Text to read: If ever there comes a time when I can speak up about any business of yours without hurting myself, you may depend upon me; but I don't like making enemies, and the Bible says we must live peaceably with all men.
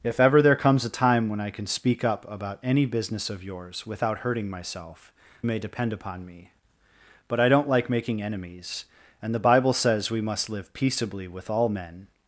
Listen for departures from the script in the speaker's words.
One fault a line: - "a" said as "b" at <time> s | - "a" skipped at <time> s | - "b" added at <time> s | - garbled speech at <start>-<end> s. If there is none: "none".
- "you" skipped at 5.1 s